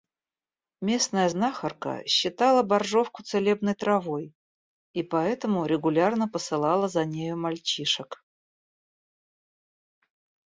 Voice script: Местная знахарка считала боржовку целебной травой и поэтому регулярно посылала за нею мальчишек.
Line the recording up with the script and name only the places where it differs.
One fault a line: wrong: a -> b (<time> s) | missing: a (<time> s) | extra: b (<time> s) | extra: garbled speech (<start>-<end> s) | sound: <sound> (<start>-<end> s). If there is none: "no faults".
no faults